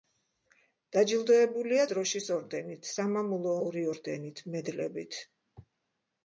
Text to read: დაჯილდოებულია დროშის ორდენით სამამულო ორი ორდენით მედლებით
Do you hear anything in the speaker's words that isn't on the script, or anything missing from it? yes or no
no